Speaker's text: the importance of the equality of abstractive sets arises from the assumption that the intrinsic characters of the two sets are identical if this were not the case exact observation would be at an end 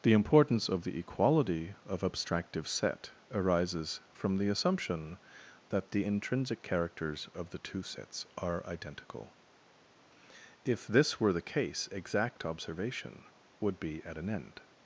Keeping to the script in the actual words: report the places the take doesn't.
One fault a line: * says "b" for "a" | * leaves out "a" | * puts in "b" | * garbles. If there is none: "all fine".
* says "set" for "sets"
* leaves out "not"